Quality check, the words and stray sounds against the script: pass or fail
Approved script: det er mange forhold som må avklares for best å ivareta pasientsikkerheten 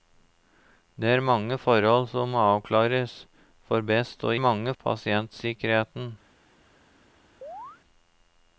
fail